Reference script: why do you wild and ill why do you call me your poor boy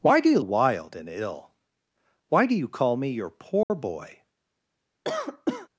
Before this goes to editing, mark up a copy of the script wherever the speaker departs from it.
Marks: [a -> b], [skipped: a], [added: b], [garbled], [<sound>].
why do you wild and ill why do you call me your poor [dropout] boy [cough]